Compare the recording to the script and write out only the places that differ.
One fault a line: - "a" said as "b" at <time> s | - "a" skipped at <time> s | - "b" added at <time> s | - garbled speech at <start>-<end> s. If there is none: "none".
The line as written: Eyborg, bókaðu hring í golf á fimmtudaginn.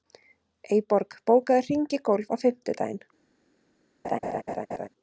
none